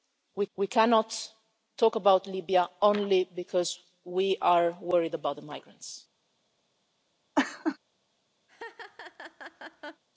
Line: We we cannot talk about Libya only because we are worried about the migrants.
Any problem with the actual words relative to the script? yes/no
no